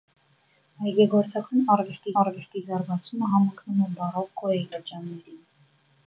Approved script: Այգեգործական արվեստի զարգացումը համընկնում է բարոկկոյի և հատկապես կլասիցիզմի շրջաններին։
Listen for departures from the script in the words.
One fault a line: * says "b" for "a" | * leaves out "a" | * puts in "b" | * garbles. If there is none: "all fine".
* puts in "արվեստի"
* leaves out "և հատկապես կլասիցիզմի"